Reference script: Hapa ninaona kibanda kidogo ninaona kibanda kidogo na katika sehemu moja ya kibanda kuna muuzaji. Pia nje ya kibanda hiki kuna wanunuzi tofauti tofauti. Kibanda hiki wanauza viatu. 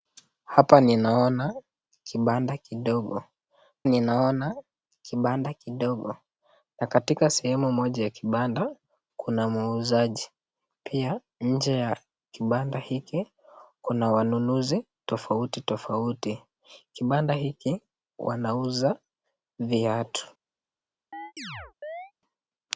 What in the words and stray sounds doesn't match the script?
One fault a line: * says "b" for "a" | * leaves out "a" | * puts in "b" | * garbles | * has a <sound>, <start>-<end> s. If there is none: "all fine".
* has a chirp, 21.1-22.1 s